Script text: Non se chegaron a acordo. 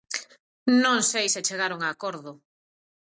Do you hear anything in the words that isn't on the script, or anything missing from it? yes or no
yes